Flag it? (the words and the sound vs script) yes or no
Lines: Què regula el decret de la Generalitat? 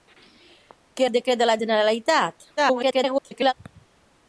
yes